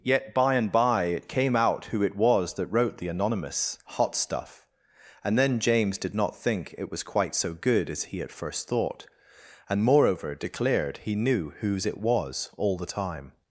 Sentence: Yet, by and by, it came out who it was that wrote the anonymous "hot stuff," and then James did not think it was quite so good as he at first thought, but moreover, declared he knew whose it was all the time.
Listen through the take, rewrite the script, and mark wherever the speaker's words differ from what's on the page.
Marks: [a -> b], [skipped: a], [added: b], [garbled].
Yet, by and by, it came out who it was that wrote the anonymous "hot stuff," and then James did not think it was quite so good as he at first thought, [but -> and] moreover, declared he knew whose it was all the time.